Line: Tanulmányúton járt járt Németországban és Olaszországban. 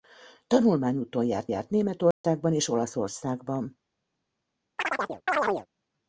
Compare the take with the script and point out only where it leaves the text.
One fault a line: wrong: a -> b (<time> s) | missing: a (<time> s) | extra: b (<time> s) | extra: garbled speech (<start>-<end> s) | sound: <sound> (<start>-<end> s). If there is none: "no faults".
sound: dropout (2.1-2.2 s)
sound: chirp (4.8-5.7 s)